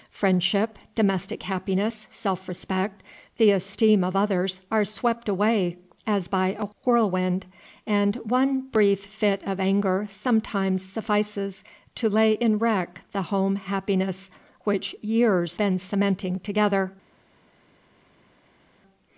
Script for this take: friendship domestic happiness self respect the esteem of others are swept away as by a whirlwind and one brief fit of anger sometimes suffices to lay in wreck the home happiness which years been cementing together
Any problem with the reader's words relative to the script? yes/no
no